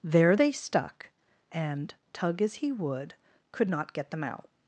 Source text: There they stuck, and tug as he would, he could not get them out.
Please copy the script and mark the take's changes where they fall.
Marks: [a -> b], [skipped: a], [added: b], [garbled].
There they stuck, and tug as he would, [skipped: he] could not get them out.